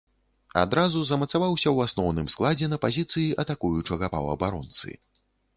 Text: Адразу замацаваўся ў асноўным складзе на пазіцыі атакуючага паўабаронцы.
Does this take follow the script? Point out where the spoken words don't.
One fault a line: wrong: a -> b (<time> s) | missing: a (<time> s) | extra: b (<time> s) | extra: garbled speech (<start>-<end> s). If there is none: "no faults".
no faults